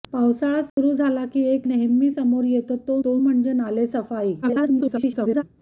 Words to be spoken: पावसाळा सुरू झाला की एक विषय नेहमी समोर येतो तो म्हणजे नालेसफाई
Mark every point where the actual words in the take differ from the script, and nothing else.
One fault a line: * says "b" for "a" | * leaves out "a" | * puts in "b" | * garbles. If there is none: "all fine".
* leaves out "विषय"
* puts in "तो"
* garbles